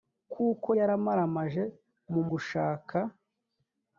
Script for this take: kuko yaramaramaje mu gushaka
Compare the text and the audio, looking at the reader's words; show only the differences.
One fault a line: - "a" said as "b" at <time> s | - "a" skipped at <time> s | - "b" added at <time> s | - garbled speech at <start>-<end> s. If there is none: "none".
none